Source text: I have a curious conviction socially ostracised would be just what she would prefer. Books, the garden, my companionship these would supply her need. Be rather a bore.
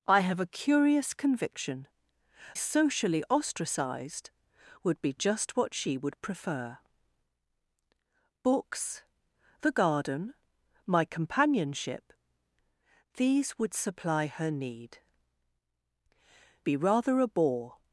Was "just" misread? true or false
false